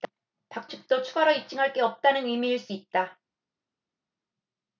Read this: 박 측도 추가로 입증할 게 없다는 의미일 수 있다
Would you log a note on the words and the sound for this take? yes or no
no